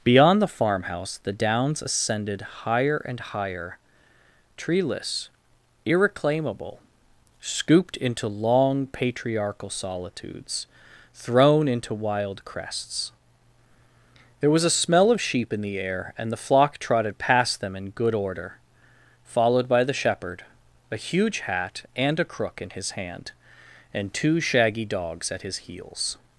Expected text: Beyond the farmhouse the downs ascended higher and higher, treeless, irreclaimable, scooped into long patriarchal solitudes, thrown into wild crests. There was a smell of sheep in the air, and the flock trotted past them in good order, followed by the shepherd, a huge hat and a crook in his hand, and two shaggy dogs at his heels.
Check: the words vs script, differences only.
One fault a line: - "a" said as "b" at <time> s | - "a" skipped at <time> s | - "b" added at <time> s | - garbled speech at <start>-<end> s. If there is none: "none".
none